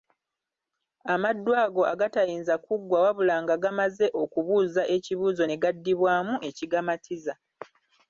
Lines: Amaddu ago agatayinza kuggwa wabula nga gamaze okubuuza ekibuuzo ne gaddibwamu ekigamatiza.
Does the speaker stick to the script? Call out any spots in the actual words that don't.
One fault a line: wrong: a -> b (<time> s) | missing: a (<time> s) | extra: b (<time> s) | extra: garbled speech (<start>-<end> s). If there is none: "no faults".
no faults